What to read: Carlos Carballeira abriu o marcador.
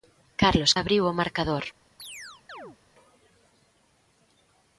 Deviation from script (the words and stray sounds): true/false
true